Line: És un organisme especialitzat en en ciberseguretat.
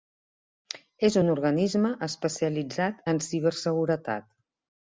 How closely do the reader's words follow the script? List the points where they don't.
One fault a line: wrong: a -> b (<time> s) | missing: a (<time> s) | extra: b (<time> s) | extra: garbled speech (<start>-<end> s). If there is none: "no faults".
missing: en (3.2 s)